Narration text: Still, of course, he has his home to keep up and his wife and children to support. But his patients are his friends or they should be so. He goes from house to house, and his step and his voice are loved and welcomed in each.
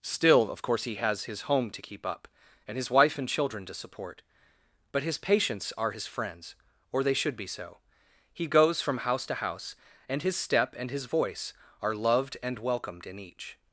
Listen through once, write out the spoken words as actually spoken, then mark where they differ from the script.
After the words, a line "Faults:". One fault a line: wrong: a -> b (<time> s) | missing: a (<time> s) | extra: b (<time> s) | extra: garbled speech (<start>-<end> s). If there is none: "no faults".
Still, of course, he has his home to keep up and his wife and children to support. But his patients are his friends or they should be so. He goes from house to house, and his step and his voice are loved and welcomed in each.
Faults:
no faults